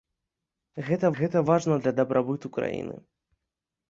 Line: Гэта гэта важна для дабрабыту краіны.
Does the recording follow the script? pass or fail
pass